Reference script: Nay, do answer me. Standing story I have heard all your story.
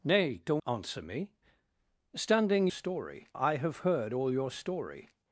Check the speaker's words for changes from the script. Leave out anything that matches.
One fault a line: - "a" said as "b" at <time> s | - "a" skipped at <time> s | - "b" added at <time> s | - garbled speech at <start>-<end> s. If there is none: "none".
none